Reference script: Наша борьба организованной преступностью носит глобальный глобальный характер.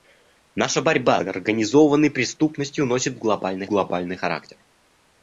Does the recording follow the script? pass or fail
pass